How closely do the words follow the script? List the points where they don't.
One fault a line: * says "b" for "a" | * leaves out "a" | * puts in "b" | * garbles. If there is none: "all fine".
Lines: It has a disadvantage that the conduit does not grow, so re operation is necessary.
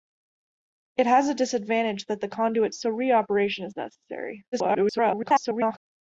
* leaves out "does not grow"
* garbles